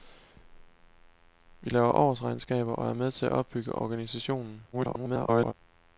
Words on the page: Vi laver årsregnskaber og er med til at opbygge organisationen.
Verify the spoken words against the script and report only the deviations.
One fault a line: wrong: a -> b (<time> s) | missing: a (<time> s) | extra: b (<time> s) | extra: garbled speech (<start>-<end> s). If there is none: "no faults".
extra: garbled speech (4.7-5.5 s)